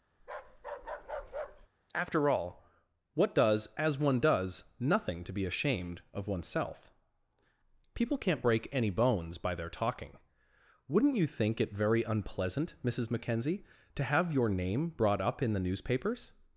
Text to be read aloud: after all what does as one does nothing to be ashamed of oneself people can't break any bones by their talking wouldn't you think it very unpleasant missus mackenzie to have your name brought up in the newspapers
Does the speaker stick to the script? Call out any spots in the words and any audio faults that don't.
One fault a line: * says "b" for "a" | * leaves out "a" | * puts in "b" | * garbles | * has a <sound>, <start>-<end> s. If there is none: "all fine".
* has a bark, 0.2-1.7 s